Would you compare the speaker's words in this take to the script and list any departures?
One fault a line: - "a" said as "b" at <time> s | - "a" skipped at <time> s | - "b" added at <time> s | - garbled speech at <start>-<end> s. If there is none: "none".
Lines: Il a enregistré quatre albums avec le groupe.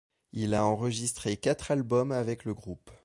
none